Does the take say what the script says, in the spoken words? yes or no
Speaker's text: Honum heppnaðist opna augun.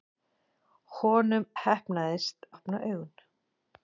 yes